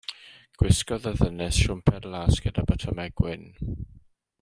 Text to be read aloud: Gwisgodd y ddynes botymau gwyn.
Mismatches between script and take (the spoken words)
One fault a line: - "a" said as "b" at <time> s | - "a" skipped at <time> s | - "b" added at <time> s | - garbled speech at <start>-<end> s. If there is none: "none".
- "siwmper las gyda" added at 1.6 s